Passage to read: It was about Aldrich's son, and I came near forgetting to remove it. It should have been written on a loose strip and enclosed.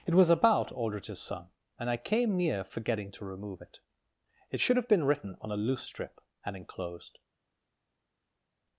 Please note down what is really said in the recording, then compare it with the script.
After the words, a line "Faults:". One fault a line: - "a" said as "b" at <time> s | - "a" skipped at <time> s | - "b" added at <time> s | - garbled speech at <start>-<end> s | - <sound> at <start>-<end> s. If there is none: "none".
It was about Aldrich's son, and I came near forgetting to remove it. It should have been written on a loose strip and enclosed.
Faults:
none